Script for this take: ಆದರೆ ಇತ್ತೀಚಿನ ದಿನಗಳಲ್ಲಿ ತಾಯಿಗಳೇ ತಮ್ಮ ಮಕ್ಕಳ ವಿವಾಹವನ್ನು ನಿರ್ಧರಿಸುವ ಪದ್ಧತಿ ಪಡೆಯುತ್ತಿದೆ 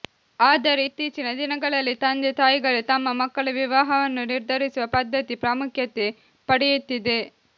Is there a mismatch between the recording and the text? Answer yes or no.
yes